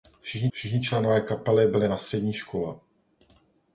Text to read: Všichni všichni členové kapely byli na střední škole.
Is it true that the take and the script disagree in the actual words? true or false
false